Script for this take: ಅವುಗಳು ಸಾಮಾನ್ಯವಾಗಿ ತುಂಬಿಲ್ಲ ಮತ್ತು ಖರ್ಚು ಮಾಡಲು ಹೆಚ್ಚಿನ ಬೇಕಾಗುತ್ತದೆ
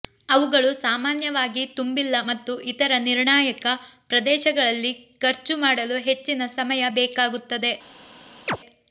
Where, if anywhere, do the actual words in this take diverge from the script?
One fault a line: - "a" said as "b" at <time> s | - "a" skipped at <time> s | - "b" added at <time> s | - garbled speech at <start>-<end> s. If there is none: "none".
- "ಇತರ ನಿರ್ಣಾಯಕ ಪ್ರದೇಶಗಳಲ್ಲಿ" added at 2.7 s
- "ಸಮಯ" added at 6.6 s